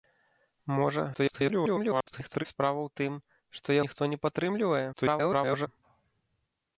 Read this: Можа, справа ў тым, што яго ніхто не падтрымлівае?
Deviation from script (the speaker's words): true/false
true